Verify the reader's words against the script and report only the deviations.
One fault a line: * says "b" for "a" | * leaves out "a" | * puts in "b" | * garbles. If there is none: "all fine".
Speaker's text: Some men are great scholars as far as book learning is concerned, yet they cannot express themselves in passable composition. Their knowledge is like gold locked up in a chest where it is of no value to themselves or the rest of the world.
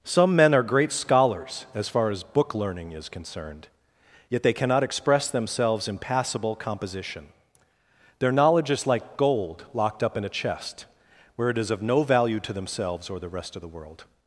all fine